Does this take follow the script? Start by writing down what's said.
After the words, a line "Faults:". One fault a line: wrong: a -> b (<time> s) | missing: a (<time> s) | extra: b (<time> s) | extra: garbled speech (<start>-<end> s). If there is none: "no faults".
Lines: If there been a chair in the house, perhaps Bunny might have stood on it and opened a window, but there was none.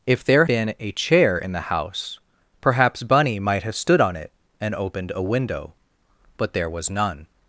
If there been a chair in the house, perhaps Bunny might have stood on it and opened a window, but there was none.
Faults:
no faults